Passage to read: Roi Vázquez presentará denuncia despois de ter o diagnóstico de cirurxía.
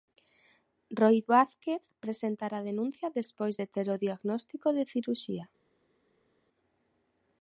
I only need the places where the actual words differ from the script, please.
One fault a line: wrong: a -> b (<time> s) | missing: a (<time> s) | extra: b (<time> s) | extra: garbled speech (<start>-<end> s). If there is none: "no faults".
no faults